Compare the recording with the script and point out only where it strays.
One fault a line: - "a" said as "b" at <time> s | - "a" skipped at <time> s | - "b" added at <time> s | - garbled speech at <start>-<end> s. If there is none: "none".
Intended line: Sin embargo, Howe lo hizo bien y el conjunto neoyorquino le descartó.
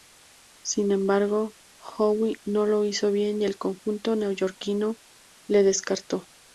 - "no" added at 2.4 s